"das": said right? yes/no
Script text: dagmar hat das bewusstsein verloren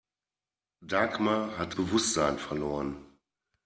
no